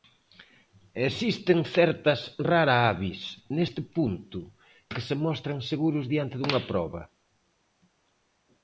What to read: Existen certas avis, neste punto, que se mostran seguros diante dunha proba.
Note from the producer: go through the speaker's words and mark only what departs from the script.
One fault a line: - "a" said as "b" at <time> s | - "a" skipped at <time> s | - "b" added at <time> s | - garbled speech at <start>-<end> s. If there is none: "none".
- "rara" added at 2.5 s